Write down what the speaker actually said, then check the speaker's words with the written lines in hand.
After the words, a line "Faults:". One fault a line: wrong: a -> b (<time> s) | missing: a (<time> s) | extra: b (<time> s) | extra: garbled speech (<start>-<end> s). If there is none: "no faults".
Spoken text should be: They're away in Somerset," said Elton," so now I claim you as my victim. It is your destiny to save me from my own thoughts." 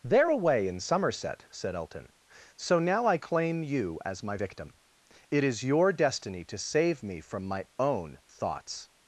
They're away in Somerset," said Elton," so now I claim you as my victim. It is your destiny to save me from my own thoughts."
Faults:
no faults